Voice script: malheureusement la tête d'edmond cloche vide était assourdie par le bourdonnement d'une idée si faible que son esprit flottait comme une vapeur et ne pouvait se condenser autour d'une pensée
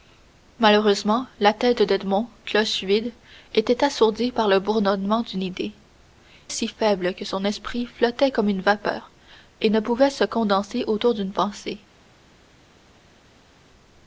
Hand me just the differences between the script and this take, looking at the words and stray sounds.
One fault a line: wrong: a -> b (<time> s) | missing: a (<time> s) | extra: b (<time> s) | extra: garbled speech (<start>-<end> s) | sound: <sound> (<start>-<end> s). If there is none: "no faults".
no faults